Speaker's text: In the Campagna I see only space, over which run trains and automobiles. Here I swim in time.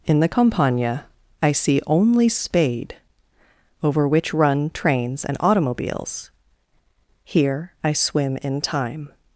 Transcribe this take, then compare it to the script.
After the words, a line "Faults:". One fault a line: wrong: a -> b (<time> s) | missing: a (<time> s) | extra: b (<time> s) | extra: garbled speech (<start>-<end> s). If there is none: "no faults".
In the Campagna I see only spade, over which run trains and automobiles. Here I swim in time.
Faults:
wrong: space -> spade (2.3 s)